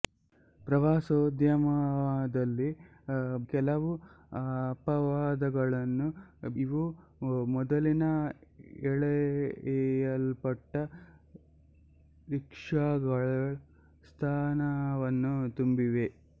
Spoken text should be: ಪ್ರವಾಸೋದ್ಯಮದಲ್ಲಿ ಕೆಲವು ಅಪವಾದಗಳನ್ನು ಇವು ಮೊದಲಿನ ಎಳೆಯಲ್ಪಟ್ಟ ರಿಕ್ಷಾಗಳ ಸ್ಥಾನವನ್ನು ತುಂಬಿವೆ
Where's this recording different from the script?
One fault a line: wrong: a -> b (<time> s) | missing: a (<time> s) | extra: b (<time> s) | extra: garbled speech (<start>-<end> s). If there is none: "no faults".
no faults